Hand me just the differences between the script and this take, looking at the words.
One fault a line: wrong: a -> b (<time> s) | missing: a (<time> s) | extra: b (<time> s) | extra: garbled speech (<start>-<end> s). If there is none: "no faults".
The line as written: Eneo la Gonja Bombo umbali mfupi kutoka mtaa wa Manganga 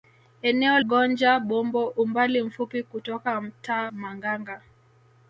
missing: la (0.8 s)
missing: wa (3.9 s)